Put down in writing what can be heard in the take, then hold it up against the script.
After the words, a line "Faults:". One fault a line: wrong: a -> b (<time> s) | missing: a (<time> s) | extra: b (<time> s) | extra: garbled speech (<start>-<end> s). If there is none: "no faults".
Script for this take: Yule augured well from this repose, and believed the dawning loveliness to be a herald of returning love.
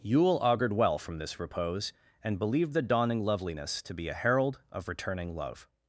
Yule augured well from this repose, and believed the dawning loveliness to be a herald of returning love.
Faults:
no faults